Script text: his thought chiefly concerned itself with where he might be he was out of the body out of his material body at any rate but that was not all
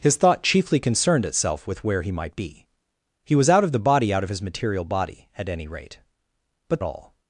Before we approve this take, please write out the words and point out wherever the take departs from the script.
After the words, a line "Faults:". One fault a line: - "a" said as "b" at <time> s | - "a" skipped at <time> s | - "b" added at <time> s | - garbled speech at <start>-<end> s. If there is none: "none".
his thought chiefly concerned itself with where he might be he was out of the body out of his material body at any rate but all
Faults:
- "that was not" skipped at 6.8 s